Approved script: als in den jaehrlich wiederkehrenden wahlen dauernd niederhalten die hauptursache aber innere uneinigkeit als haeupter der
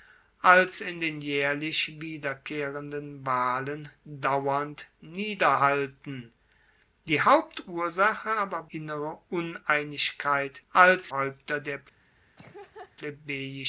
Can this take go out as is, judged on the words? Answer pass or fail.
pass